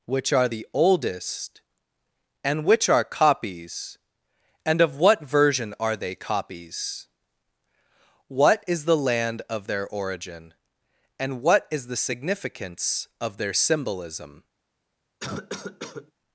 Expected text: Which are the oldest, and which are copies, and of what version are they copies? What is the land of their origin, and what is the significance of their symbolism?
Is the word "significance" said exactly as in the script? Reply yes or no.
yes